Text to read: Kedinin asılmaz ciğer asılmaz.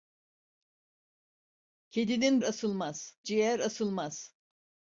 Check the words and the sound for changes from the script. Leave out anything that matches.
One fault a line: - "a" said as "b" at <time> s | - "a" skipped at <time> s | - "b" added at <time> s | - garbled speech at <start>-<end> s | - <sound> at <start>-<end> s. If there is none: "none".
none